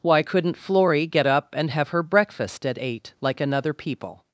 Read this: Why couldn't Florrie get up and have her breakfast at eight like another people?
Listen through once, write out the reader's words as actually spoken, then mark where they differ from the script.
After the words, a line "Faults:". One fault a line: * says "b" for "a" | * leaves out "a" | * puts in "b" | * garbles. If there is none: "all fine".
Why couldn't Florrie get up and have her breakfast at eight like another people?
Faults:
all fine